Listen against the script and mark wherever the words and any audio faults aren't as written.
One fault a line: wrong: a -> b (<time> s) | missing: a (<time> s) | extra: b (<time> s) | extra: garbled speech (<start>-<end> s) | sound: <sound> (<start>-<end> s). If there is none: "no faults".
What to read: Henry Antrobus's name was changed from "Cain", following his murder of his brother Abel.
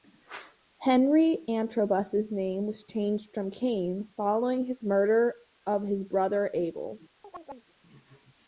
sound: chirp (7.2-7.7 s)